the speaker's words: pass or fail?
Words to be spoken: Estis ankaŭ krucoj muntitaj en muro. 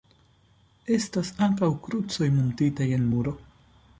fail